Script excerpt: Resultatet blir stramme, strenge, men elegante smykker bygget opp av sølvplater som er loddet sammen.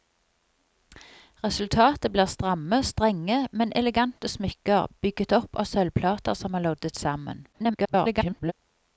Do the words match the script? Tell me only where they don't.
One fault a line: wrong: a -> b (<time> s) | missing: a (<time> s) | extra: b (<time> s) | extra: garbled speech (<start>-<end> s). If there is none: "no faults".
extra: garbled speech (7.5-8.5 s)